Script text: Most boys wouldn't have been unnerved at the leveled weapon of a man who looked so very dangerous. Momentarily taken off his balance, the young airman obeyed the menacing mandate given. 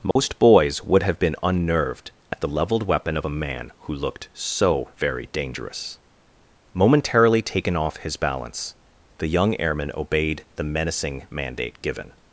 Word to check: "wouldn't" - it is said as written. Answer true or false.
false